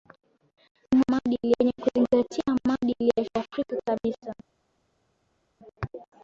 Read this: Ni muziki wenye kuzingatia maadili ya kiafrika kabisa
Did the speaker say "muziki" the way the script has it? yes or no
no